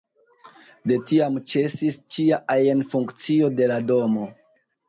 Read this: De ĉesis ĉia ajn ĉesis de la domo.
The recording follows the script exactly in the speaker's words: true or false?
false